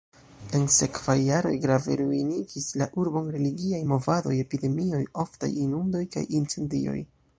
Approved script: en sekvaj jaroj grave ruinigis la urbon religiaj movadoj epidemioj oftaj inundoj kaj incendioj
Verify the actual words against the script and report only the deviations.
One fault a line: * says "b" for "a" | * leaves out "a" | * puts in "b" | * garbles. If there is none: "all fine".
all fine